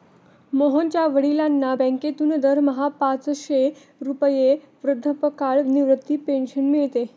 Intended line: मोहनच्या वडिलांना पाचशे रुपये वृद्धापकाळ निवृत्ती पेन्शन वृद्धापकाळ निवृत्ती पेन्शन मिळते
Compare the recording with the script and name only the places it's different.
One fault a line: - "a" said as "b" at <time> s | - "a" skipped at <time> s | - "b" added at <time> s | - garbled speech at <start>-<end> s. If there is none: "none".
- "बँकेतून दरमहा" added at 1.7 s
- "वृद्धापकाळ निवृत्ती पेन्शन" skipped at 6.7 s